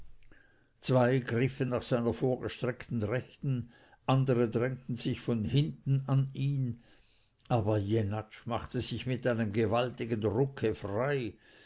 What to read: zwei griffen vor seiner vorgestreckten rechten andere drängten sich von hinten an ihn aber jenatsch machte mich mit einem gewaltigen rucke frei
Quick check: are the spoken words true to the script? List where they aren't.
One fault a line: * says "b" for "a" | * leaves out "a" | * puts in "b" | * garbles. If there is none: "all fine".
* says "nach" for "vor"
* says "sich" for "mich"